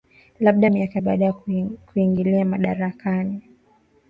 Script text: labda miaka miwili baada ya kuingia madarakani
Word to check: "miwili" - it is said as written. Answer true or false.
false